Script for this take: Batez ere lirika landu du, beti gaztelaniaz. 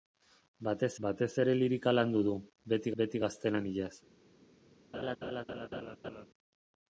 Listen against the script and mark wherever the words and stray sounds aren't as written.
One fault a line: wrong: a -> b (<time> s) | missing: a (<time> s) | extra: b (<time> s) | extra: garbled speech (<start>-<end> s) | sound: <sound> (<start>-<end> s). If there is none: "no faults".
extra: batez (1.0 s)
extra: beti (3.0 s)
sound: laugh (4.9-6.3 s)